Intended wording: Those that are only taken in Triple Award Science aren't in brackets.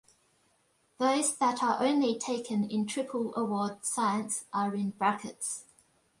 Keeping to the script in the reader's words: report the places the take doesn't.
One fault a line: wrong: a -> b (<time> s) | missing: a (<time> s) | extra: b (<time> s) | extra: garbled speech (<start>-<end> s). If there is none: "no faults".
wrong: aren't -> are (4.5 s)